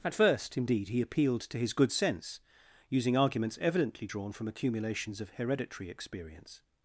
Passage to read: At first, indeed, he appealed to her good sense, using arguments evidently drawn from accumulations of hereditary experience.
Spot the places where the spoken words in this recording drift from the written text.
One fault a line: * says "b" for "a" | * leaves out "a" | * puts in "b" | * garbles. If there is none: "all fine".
* says "his" for "her"